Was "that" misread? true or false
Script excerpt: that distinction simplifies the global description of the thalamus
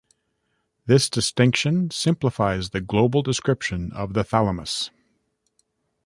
true